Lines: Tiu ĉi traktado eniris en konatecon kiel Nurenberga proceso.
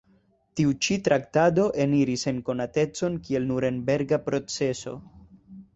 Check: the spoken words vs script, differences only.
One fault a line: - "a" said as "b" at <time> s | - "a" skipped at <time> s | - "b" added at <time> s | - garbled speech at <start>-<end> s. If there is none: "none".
none